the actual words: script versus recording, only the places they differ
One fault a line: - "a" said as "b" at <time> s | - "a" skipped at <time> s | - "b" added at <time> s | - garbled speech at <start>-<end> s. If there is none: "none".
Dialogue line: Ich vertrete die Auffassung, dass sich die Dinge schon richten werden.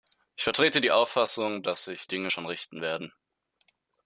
- "die" skipped at 2.1 s